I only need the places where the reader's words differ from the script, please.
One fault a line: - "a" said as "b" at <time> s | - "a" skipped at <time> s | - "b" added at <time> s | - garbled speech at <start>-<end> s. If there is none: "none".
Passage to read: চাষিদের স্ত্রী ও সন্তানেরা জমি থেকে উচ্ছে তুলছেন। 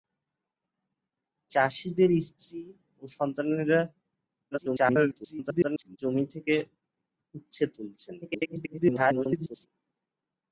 - garbled speech at 4.5-6.0 s
- garbled speech at 8.2-9.7 s